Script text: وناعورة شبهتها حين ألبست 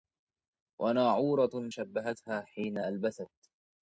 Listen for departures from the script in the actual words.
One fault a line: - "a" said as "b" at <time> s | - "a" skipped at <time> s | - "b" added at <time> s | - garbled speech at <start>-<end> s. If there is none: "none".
none